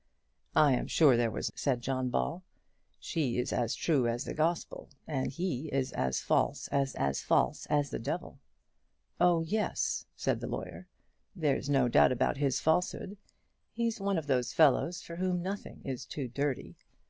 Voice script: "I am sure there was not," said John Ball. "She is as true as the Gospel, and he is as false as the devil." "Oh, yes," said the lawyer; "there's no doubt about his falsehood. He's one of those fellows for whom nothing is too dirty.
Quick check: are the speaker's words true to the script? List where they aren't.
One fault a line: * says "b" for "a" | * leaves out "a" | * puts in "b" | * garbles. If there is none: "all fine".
* leaves out "not"
* puts in "as false as"